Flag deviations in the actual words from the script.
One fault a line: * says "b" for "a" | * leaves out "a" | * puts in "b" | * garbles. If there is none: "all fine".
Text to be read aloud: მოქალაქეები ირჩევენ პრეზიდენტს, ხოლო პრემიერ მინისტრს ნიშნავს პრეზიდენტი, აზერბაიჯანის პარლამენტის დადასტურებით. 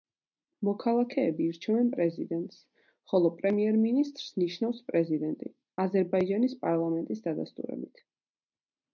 all fine